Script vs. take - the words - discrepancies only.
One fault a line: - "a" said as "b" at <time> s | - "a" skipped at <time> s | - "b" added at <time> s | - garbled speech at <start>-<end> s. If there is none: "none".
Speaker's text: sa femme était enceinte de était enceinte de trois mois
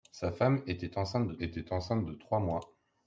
none